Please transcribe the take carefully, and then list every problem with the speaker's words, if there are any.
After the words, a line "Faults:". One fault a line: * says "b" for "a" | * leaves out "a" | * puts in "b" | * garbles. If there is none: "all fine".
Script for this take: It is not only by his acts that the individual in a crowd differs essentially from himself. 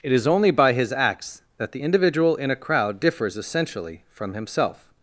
It is only by his acts that the individual in a crowd differs essentially from himself.
Faults:
* leaves out "not"